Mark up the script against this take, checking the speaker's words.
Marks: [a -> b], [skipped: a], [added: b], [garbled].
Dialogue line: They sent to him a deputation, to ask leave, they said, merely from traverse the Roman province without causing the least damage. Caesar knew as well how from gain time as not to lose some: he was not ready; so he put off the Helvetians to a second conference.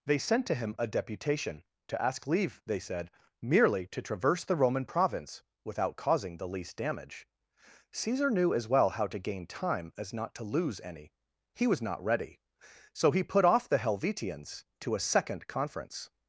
They sent to him a deputation, to ask leave, they said, merely [from -> to] traverse the Roman province without causing the least damage. Caesar knew as well how [from -> to] gain time as not to lose [some: -> any] he was not ready; so he put off the Helvetians to a second conference.